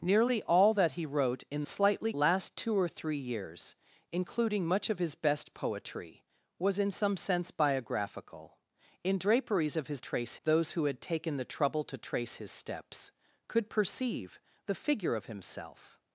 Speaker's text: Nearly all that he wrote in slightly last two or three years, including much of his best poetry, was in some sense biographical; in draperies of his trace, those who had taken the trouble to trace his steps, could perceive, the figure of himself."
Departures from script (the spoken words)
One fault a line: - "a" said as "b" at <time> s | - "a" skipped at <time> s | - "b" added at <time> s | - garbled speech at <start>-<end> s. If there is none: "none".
none